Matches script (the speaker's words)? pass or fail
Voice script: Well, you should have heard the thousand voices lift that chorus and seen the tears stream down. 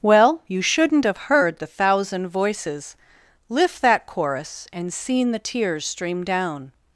fail